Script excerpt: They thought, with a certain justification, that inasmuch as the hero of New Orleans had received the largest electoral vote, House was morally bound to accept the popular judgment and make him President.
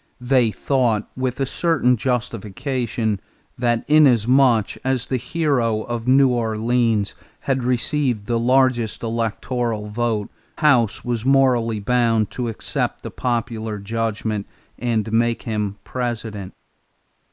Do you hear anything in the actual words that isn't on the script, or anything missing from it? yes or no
no